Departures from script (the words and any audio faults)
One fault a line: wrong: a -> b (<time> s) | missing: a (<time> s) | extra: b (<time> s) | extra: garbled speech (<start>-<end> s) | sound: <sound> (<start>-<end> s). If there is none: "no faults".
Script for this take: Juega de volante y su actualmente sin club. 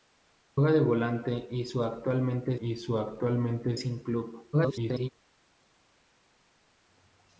extra: y su actualmente (2.6 s)
extra: garbled speech (4.5-5.1 s)